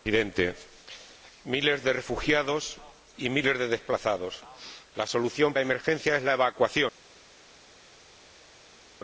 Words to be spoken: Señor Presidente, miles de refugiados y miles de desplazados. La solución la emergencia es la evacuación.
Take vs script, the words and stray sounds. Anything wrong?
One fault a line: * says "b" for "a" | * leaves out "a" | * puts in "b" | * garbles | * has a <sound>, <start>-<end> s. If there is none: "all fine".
all fine